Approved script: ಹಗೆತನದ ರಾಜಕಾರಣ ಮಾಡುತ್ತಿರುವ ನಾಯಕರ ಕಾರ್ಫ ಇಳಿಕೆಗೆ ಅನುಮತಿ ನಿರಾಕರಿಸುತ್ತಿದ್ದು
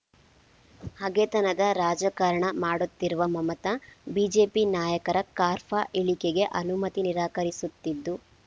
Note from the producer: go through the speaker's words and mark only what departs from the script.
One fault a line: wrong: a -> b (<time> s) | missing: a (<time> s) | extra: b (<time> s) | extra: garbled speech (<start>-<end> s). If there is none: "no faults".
extra: ಮಮತಾ ಬಿಜೆಪಿ (3.3 s)